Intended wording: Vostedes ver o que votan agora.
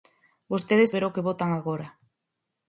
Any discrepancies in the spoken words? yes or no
no